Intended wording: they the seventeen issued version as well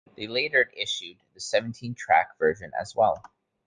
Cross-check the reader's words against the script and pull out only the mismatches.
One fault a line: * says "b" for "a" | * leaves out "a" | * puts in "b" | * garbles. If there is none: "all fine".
* puts in "later issued"
* says "track" for "issued"